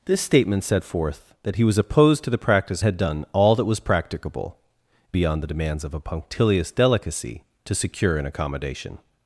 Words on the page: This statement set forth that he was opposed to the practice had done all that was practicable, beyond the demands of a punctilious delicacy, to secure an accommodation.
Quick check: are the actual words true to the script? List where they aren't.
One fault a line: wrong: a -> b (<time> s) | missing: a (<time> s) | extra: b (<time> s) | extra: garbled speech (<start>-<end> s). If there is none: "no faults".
no faults